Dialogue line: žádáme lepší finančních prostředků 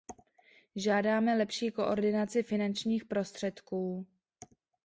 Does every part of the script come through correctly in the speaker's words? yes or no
no